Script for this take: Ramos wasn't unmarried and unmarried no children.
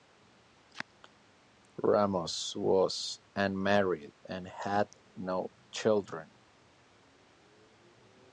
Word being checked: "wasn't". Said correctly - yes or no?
no